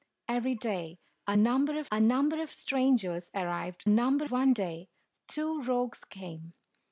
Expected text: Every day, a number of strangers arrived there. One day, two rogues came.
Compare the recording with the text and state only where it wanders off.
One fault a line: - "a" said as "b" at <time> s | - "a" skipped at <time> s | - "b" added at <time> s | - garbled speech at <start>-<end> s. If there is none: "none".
- "a number of" added at 1.9 s
- "there" said as "number" at 3.9 s